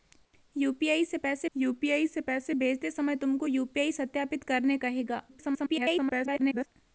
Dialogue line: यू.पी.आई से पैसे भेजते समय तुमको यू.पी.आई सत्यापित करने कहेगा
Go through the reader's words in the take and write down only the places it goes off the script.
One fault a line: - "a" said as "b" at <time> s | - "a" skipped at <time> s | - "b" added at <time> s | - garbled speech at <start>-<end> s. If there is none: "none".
- "यू.पी.आई से पैसे" added at 1.5 s
- garbled speech at 5.3-6.7 s